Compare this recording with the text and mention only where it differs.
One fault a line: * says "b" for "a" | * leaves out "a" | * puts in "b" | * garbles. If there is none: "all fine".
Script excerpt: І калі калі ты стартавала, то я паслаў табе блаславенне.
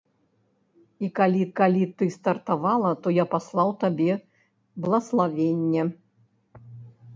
all fine